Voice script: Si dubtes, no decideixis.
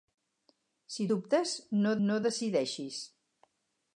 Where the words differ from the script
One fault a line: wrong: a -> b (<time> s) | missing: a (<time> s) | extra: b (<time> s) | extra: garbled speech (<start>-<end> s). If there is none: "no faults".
extra: no (2.1 s)